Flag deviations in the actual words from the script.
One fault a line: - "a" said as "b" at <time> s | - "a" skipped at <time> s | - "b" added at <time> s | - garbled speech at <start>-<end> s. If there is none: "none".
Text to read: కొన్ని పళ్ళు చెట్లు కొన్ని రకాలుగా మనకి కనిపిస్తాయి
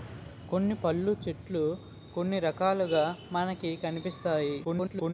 - garbled speech at 4.6-5.1 s